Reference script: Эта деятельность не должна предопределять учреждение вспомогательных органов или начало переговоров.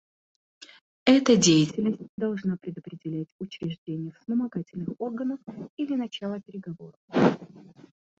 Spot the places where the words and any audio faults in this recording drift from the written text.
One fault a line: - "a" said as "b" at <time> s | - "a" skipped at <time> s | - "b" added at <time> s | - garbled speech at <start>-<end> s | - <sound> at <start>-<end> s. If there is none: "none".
- "не" skipped at 2.0 s